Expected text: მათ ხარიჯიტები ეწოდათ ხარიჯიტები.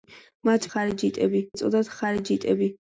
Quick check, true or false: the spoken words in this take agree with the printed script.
true